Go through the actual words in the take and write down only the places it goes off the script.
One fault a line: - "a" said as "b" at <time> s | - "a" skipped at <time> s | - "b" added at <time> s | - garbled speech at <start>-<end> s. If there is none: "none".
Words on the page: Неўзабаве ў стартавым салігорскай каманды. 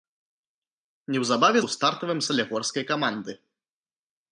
none